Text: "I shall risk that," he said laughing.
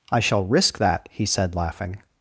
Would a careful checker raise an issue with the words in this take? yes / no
no